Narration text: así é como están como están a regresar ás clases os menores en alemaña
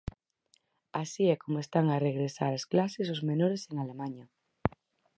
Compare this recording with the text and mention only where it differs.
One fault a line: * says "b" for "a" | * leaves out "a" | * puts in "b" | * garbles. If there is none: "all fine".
* leaves out "como están"